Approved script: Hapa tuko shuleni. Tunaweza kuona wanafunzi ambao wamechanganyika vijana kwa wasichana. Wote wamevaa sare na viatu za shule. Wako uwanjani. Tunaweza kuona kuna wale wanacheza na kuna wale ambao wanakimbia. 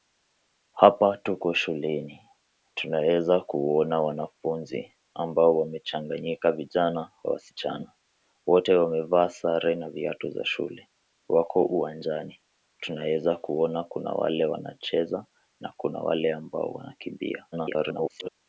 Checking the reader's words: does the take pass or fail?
fail